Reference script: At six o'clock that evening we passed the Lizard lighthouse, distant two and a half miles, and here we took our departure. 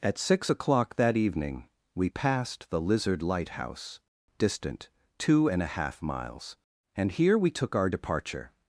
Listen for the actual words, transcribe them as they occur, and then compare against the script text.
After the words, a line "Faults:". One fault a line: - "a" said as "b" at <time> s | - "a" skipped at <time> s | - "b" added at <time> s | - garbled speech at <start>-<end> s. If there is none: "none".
At six o'clock that evening we passed the Lizard lighthouse, distant two and a half miles, and here we took our departure.
Faults:
none